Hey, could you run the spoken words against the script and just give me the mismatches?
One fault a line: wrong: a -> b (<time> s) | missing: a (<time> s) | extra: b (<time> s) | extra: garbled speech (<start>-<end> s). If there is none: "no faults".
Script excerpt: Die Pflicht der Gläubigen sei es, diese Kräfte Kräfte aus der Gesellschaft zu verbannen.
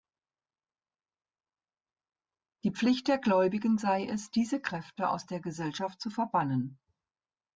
missing: Kräfte (5.1 s)